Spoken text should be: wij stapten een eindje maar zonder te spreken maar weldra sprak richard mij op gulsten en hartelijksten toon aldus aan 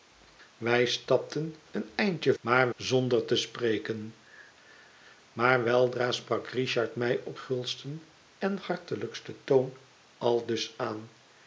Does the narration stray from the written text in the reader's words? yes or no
no